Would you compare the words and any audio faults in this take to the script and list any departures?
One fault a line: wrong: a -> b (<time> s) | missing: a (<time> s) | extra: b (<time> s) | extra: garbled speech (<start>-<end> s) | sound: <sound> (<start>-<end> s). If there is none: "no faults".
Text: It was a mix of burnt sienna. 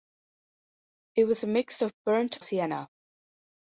no faults